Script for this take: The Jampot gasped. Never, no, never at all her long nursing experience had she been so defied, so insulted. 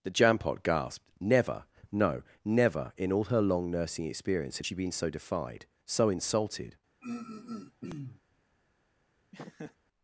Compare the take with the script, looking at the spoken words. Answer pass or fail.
fail